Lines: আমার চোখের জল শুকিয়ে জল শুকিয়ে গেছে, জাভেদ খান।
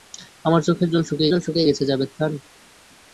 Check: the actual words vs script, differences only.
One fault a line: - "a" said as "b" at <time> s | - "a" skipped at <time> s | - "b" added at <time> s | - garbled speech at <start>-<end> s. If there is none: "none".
none